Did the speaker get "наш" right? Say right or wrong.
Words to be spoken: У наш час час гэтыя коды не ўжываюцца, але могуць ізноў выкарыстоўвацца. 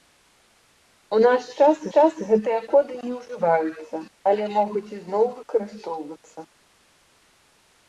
right